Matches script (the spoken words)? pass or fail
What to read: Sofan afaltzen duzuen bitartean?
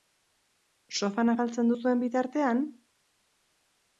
pass